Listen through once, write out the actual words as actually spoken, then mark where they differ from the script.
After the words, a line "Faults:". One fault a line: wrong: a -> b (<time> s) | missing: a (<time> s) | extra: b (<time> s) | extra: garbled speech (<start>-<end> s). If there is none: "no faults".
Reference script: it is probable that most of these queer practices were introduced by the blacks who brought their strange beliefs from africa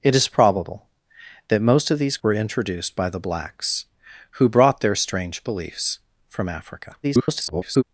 it is probable that most of these were introduced by the blacks who brought their strange beliefs from africa [garbled]
Faults:
missing: queer practices (2.2 s)
extra: garbled speech (7.0-7.8 s)